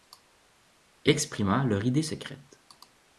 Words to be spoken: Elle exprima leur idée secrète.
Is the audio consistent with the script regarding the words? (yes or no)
yes